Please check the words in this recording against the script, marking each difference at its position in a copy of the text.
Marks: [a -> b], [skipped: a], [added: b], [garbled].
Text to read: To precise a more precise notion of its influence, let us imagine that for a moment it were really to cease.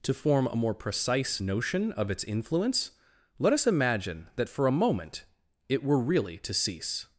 To [precise -> form] a more precise notion of its influence, let us imagine that for a moment it were really to cease.